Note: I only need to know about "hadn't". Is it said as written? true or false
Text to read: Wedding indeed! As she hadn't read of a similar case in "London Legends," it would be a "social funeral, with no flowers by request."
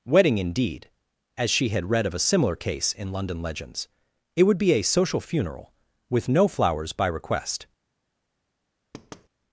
false